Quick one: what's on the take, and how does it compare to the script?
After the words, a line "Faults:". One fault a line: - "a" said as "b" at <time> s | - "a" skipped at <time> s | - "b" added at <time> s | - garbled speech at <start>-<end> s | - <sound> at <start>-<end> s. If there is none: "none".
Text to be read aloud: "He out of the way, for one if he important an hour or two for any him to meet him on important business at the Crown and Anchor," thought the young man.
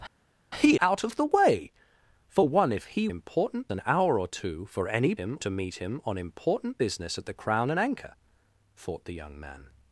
"He out of the way, for one if he important an hour or two for any him to meet him on important business at the Crown and Anchor," thought the young man.
Faults:
none